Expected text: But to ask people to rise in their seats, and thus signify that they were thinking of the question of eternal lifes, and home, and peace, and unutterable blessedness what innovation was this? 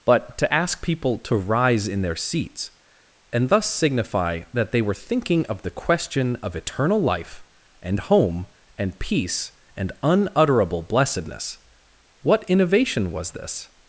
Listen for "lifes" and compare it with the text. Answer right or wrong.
wrong